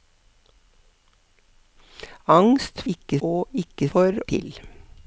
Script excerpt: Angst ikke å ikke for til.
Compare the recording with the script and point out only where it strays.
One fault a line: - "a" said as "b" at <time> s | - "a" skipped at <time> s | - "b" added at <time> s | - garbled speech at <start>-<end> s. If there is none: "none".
none